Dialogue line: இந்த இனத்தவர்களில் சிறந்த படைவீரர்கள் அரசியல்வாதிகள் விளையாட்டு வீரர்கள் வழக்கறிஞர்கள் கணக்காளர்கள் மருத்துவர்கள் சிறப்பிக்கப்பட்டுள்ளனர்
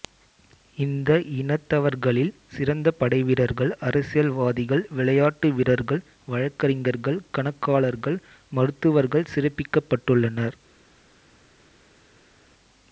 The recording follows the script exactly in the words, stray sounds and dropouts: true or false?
true